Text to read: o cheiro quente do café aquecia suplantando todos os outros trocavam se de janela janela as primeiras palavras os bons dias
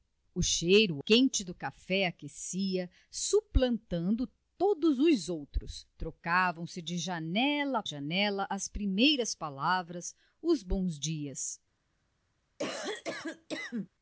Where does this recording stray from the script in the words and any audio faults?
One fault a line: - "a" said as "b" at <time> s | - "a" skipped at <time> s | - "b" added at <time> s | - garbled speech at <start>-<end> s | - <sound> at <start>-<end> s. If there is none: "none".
- cough at 12.6-13.9 s